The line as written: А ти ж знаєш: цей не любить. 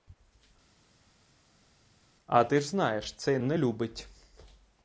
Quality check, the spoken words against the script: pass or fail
pass